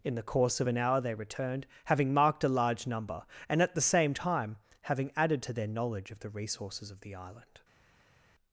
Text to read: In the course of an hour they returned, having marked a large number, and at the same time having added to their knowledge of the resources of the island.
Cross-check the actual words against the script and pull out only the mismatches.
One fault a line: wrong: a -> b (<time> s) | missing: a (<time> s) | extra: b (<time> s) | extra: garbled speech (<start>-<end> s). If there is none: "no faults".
no faults